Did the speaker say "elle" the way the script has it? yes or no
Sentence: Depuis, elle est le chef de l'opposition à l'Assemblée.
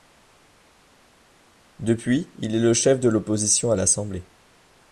no